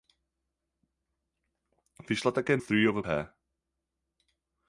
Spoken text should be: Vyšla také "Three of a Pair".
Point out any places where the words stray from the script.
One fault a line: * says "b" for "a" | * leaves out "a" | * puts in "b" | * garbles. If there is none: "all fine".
all fine